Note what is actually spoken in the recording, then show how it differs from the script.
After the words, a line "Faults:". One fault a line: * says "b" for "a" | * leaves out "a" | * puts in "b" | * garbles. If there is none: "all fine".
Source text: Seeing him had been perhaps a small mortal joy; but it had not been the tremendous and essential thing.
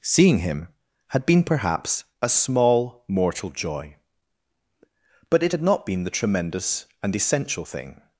Seeing him had been perhaps a small mortal joy; but it had not been the tremendous and essential thing.
Faults:
all fine